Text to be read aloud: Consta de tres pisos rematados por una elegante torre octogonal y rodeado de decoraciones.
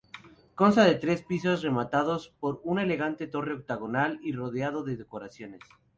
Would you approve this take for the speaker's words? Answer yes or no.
yes